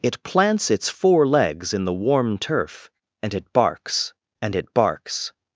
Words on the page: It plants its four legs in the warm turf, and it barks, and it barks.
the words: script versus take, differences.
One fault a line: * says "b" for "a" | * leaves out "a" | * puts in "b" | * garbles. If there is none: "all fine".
all fine